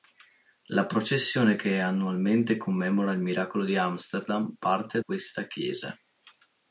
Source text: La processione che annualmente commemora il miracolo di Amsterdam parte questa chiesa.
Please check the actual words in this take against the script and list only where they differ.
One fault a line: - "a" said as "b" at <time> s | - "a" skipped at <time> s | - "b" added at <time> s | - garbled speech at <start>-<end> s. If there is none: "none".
none